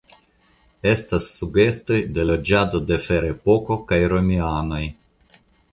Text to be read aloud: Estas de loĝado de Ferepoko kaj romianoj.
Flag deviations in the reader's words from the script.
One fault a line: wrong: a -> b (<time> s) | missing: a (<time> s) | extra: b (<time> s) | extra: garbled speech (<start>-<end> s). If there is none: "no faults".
extra: sugestoj (1.4 s)